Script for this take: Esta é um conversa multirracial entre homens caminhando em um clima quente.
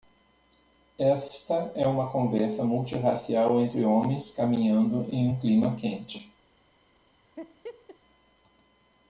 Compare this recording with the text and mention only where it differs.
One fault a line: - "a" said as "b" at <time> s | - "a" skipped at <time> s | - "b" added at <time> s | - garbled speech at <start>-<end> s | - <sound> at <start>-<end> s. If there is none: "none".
- "um" said as "uma" at 1.9 s
- laugh at 7.4-8.0 s